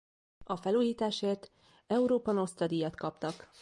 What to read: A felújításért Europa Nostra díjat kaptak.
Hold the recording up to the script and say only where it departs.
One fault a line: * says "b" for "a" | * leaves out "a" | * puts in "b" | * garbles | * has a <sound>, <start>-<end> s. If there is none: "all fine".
all fine